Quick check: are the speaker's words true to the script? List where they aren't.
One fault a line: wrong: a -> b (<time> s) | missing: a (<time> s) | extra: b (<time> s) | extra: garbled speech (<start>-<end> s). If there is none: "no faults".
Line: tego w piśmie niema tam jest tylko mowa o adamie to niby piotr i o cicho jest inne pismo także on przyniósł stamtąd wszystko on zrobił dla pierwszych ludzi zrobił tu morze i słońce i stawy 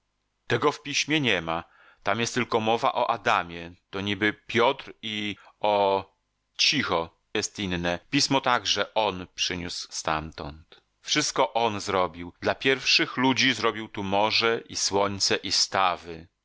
no faults